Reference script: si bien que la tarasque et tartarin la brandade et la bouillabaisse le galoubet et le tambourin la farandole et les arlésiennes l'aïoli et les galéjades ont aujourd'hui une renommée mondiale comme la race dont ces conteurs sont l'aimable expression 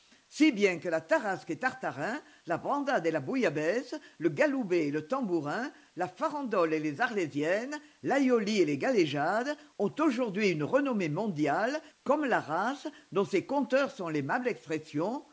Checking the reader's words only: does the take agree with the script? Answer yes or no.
yes